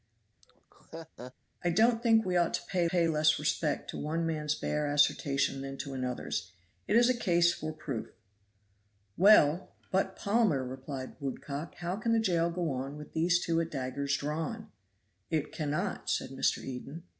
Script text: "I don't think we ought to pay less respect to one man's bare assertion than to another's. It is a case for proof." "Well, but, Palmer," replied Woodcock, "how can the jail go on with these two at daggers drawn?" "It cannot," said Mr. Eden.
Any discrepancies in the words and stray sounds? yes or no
yes